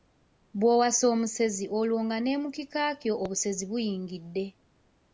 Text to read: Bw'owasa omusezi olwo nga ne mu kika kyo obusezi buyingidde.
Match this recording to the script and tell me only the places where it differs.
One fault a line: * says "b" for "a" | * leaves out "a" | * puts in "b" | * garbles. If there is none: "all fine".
all fine